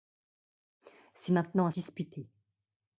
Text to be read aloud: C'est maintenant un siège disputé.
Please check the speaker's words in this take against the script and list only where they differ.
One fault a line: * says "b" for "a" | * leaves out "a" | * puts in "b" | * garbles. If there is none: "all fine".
* leaves out "siège"